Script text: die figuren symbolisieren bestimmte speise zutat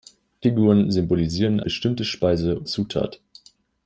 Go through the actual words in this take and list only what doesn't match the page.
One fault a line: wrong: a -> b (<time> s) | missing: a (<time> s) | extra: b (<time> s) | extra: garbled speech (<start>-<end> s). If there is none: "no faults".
no faults